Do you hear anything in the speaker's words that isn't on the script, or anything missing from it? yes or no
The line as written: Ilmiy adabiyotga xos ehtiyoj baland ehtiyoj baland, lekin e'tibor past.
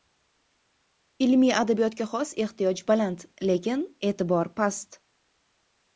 yes